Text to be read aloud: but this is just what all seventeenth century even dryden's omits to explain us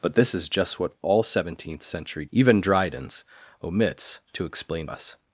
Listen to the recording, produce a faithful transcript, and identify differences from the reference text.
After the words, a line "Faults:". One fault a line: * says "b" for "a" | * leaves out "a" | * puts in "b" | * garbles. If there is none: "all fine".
but this is just what all seventeenth century even dryden's omits to explain us
Faults:
all fine